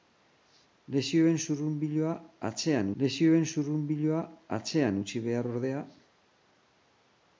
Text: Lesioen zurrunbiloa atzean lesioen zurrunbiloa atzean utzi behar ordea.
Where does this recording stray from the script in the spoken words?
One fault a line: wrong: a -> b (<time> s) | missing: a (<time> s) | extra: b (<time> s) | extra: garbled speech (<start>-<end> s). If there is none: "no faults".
no faults